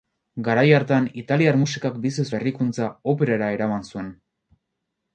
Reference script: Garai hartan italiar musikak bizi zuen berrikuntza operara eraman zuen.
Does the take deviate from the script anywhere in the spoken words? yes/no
yes